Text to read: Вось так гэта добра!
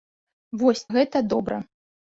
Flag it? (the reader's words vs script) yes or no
yes